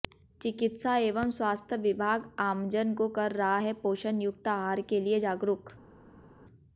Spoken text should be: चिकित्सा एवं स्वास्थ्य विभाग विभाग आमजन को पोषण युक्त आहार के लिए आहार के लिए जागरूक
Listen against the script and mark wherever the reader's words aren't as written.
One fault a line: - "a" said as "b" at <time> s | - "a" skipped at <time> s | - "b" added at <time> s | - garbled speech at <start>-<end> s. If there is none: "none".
- "विभाग" skipped at 2.2 s
- "पोषण युक्त आहार के लिए" said as "कर रहा है पोषण युक्त" at 3.2 s